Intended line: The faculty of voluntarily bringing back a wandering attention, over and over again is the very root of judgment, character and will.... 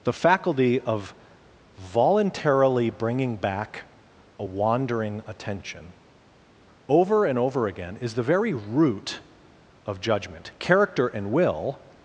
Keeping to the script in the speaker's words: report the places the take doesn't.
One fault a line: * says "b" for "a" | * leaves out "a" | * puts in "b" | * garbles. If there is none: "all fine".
all fine